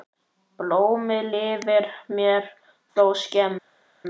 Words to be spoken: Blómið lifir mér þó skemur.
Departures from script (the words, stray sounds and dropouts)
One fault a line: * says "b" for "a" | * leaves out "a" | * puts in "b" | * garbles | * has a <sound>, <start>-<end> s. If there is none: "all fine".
all fine